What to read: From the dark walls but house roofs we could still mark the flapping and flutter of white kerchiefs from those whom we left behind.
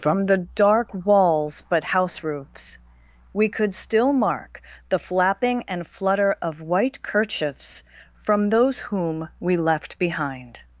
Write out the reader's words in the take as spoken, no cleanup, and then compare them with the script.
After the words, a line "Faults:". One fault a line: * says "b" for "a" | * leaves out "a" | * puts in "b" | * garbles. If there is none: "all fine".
From the dark walls but house roofs we could still mark the flapping and flutter of white kerchiefs from those whom we left behind.
Faults:
all fine